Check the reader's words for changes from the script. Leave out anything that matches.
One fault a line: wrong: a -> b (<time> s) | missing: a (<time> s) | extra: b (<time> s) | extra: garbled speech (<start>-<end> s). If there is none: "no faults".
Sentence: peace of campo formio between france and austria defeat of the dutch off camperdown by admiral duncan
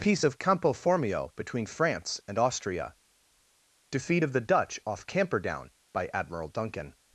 no faults